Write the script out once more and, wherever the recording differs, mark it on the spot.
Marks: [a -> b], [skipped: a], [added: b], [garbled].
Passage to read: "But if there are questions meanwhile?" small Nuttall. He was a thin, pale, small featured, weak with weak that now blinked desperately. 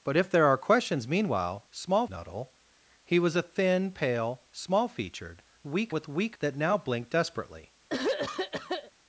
"But if there are questions meanwhile?" small Nuttall. He was a thin, pale, small featured, weak with weak that now blinked desperately.